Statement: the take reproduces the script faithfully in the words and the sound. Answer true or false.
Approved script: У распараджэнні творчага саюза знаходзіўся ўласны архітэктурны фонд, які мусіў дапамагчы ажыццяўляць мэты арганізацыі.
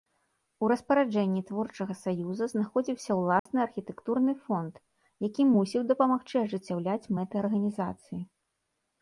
false